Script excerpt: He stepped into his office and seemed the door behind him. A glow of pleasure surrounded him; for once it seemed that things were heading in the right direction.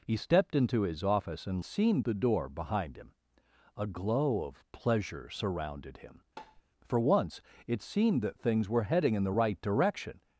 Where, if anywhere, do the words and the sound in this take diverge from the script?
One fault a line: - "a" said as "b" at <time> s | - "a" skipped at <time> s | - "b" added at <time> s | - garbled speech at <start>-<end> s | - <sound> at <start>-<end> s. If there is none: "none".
- tap at 6.4-6.6 s